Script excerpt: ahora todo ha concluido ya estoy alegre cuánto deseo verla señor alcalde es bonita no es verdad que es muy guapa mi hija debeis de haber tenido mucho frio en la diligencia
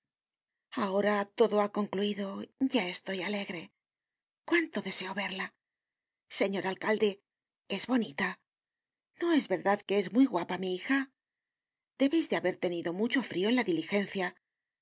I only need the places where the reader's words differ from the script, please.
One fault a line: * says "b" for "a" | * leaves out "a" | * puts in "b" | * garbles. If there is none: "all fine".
all fine